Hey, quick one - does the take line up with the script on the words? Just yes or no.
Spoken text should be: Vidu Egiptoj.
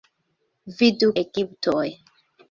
yes